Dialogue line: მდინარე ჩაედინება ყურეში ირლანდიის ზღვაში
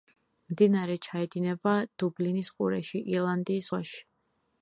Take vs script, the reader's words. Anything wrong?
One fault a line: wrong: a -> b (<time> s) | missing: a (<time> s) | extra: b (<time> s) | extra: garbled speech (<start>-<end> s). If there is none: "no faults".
extra: დუბლინის (2.0 s)